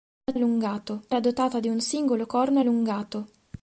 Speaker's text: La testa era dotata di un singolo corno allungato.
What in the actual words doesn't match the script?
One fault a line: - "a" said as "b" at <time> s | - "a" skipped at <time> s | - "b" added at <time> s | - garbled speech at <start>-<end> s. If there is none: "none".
- "testa" said as "allungato" at 0.3 s